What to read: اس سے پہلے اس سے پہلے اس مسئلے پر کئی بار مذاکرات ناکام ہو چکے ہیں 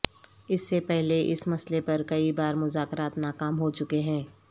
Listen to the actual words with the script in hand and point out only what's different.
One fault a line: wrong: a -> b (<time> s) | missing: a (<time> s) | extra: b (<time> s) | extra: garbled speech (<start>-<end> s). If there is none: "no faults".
missing: سے پہلے اس (1.5 s)